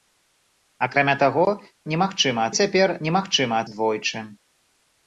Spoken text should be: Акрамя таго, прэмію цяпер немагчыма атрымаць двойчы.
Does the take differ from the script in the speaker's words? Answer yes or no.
yes